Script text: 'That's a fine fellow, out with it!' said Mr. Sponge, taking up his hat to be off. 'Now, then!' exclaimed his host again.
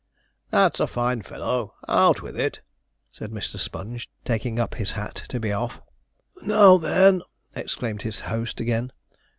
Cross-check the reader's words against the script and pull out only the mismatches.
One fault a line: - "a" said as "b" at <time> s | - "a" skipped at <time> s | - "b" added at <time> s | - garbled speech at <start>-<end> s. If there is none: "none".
none